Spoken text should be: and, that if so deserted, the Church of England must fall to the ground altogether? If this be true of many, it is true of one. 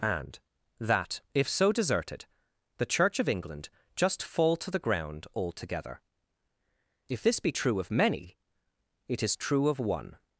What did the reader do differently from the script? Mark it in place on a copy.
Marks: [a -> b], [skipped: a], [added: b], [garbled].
and, that if so deserted, the Church of England [must -> just] fall to the ground altogether? If this be true of many, it is true of one.